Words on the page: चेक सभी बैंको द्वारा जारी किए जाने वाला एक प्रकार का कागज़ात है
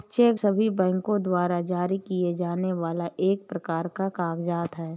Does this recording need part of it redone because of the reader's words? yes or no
no